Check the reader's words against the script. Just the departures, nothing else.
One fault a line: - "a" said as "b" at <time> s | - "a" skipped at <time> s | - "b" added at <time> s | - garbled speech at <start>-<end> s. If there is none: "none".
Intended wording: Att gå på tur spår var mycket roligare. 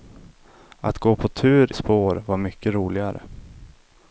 none